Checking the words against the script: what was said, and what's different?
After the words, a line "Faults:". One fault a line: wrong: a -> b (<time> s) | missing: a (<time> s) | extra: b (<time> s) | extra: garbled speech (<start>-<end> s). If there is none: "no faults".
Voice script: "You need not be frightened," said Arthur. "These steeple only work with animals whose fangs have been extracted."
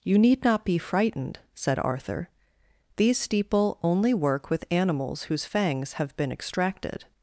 "You need not be frightened," said Arthur. "These steeple only work with animals whose fangs have been extracted."
Faults:
no faults